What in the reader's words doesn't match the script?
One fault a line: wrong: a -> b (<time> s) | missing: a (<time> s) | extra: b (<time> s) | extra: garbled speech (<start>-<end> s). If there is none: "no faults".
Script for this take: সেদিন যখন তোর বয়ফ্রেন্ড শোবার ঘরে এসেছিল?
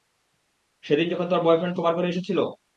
no faults